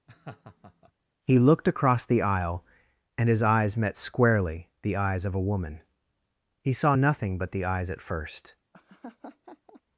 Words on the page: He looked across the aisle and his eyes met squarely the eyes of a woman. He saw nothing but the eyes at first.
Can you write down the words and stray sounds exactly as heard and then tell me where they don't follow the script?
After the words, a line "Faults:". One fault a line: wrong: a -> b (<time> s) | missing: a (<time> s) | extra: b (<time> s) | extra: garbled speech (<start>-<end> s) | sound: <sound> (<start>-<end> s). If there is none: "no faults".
He looked across the aisle and his eyes met squarely the eyes of a woman. He saw nothing but the eyes at first.
Faults:
sound: laugh (0.1-0.9 s)
sound: laugh (8.7-9.8 s)